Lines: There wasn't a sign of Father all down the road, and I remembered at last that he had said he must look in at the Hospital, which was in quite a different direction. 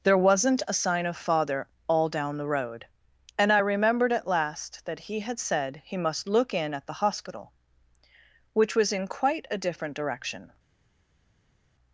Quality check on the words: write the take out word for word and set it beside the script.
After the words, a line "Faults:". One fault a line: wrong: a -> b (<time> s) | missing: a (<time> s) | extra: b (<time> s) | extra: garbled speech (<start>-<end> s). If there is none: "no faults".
There wasn't a sign of Father all down the road, and I remembered at last that he had said he must look in at the Hospital, which was in quite a different direction.
Faults:
no faults